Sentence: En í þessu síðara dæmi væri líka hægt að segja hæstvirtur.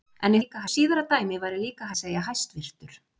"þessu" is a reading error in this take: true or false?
true